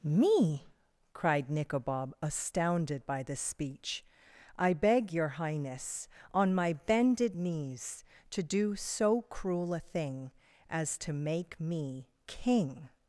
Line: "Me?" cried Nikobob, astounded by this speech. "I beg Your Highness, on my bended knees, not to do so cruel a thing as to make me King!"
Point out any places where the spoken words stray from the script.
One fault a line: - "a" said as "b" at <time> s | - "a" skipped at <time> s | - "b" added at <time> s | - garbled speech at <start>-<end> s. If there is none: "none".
- "not" skipped at 8.0 s